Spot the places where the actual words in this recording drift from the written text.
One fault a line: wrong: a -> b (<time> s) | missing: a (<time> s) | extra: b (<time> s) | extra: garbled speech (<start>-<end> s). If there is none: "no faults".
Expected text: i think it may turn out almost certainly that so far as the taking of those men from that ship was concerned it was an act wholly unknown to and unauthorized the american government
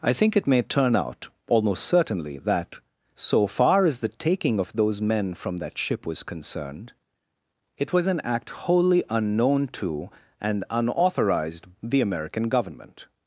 no faults